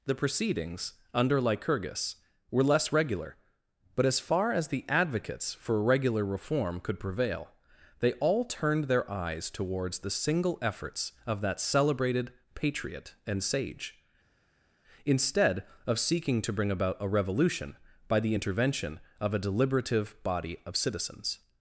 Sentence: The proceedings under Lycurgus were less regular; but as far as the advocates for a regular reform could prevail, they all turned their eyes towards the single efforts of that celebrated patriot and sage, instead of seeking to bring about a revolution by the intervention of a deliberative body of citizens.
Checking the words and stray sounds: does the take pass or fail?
fail